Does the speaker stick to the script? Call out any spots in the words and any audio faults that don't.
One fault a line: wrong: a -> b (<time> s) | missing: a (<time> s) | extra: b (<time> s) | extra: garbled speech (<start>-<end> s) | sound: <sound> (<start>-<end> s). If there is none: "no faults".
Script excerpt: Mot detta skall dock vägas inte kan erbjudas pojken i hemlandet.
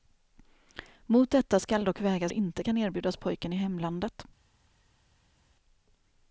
no faults